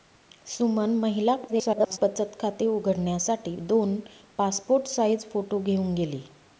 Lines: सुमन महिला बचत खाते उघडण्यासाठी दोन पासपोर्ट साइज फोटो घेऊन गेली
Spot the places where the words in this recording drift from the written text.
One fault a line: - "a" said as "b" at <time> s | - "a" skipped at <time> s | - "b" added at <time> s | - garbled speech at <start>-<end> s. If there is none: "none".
- garbled speech at 1.5-2.0 s